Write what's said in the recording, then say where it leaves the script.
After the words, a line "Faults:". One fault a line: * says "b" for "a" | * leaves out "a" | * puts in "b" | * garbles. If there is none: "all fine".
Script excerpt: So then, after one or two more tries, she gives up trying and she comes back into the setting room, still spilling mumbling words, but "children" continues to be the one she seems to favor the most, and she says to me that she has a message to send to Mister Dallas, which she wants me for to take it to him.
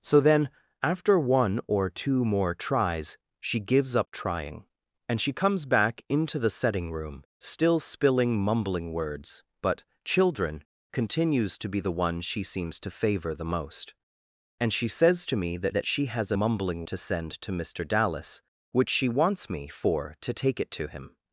So then, after one or two more tries, she gives up trying and she comes back into the setting room, still spilling mumbling words, but "children" continues to be the one she seems to favor the most, and she says to me that that she has a mumbling to send to Mister Dallas, which she wants me for to take it to him.
Faults:
* puts in "that"
* says "mumbling" for "message"